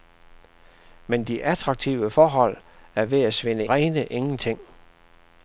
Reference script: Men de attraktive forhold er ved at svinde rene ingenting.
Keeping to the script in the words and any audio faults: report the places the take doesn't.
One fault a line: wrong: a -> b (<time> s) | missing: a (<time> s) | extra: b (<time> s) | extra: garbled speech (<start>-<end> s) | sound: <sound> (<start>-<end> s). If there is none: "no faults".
no faults